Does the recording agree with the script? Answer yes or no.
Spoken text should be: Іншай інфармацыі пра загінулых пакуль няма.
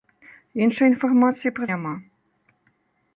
no